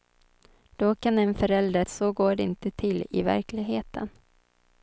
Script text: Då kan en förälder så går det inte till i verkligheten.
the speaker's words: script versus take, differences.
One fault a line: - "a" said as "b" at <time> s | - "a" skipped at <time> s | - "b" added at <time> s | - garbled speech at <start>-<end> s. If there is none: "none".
none